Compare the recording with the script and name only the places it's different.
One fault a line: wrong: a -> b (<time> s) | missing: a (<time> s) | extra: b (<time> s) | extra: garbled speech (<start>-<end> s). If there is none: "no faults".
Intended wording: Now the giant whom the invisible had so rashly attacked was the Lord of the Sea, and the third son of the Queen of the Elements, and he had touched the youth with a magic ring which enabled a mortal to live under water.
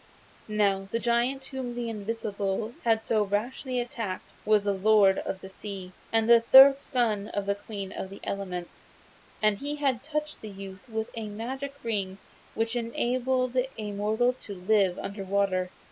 no faults